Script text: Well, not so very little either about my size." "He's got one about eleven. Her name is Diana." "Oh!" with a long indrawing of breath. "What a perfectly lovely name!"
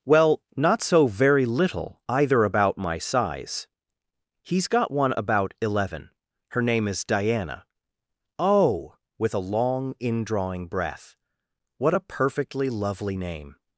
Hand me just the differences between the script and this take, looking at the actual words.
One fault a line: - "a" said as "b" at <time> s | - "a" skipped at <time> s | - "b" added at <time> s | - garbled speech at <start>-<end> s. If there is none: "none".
- "of" skipped at 10.7 s